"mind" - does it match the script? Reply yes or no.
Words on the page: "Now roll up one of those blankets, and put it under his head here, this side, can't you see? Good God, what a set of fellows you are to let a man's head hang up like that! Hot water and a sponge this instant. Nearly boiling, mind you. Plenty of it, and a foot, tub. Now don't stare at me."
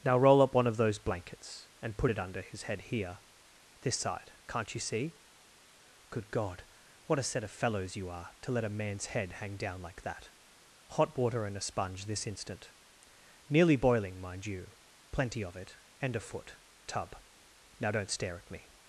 yes